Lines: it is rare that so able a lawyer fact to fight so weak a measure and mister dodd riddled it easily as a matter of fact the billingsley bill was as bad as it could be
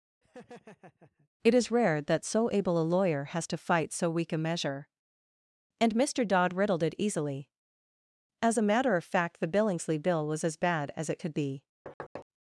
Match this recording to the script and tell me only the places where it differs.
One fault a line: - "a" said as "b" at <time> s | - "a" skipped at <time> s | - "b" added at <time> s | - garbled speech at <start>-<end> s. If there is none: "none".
- "fact" said as "has" at 3.2 s